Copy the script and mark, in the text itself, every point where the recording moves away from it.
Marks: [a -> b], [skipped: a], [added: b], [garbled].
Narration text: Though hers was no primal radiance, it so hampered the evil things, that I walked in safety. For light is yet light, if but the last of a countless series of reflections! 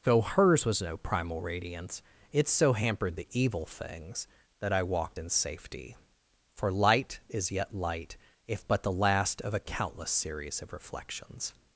Though hers was no primal radiance, it so hampered the evil things, that I walked in safety. For light is yet light, if but the last of a countless series of reflections!